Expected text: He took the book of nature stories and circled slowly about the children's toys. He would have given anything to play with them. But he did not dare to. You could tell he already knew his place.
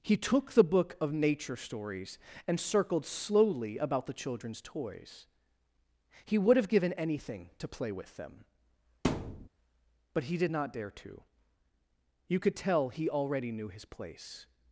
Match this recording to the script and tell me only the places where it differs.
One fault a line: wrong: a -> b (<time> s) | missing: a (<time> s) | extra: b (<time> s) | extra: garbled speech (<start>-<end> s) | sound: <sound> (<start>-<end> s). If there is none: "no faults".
sound: thud (9.0-9.5 s)